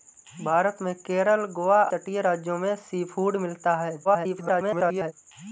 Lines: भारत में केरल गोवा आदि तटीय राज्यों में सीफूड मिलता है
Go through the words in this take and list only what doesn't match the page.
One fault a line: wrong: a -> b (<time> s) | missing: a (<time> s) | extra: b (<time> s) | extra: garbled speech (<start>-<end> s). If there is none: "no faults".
missing: आदि (1.8 s)
extra: garbled speech (4.0-5.1 s)